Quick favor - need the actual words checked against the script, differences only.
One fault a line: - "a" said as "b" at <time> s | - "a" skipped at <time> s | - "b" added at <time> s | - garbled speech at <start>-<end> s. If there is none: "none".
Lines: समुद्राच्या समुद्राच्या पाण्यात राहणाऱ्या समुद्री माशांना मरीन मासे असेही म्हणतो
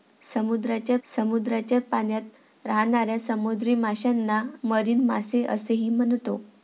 none